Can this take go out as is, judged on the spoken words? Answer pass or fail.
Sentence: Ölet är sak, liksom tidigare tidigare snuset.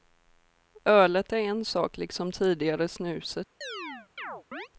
fail